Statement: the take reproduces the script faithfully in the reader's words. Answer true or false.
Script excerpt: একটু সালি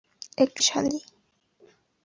true